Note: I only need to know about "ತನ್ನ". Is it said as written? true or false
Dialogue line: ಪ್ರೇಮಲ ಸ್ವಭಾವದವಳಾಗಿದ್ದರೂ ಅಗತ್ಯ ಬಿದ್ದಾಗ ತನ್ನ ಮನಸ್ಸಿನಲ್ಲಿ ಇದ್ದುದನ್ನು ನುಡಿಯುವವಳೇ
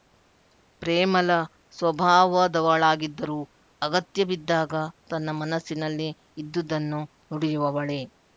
true